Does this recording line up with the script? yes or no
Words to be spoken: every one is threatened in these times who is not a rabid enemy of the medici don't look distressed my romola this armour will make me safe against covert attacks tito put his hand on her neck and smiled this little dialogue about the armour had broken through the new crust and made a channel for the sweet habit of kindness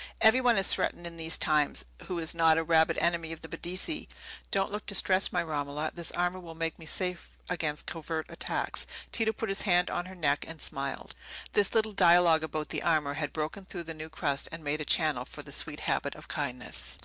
yes